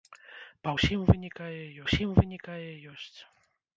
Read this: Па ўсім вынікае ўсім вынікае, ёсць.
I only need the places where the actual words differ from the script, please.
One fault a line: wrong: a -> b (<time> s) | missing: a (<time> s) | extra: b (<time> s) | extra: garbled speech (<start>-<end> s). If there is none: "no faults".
no faults